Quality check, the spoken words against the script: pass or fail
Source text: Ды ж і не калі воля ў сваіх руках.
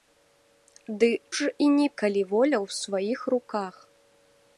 pass